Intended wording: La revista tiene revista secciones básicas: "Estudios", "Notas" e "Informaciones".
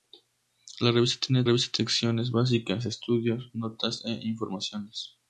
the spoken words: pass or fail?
pass